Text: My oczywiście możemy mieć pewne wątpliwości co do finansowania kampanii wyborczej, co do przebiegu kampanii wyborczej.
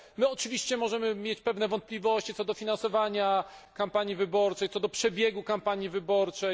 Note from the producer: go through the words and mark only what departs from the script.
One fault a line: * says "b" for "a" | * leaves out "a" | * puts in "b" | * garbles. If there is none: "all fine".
all fine